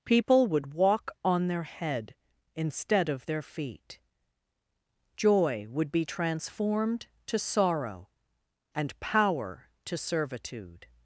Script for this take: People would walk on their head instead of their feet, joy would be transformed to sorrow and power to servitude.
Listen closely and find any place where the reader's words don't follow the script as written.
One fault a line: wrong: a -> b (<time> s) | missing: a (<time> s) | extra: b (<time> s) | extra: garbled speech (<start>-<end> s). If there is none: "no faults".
no faults